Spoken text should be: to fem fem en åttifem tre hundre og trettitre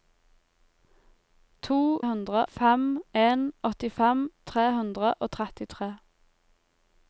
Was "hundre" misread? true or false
false